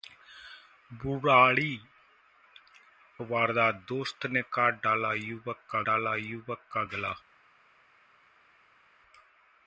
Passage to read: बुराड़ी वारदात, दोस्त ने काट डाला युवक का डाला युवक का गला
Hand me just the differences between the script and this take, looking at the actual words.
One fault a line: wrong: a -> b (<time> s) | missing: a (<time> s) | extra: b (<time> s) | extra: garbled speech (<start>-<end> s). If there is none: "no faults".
no faults